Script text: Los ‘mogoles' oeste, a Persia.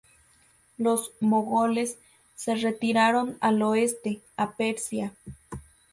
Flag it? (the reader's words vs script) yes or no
yes